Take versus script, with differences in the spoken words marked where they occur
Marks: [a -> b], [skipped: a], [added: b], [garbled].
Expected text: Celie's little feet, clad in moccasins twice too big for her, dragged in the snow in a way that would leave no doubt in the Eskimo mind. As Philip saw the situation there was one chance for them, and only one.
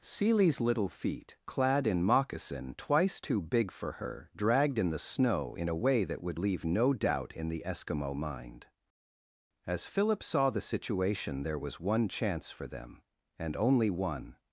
Celie's little feet, clad in [moccasins -> moccasin] twice too big for her, dragged in the snow in a way that would leave no doubt in the Eskimo mind. As Philip saw the situation there was one chance for them, and only one.